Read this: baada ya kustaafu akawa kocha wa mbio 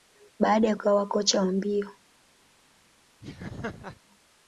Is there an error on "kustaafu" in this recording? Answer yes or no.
yes